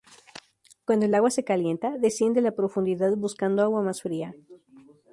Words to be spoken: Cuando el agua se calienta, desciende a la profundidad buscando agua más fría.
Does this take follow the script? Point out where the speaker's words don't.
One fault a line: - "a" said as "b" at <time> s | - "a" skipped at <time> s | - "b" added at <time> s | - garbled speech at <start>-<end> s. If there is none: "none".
none